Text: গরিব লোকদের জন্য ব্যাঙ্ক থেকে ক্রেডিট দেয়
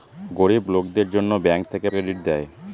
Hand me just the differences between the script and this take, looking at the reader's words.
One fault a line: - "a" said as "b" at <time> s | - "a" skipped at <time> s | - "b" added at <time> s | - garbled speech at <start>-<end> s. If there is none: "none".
none